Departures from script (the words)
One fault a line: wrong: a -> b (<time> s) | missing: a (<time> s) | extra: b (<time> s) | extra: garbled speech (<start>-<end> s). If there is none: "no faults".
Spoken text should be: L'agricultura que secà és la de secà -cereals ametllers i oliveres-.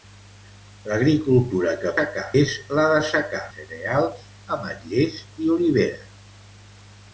no faults